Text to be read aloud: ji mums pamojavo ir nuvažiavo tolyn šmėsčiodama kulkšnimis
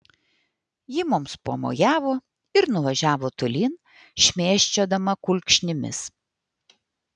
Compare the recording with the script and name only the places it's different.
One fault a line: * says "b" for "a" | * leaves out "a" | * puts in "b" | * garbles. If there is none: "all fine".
all fine